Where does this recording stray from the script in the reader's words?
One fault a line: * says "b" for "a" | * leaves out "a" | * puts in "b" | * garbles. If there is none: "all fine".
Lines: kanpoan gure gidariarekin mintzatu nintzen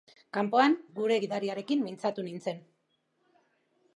all fine